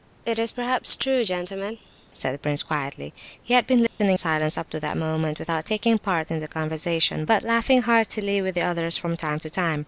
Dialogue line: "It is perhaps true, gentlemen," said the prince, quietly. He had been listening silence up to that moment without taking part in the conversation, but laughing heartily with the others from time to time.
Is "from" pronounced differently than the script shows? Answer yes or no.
no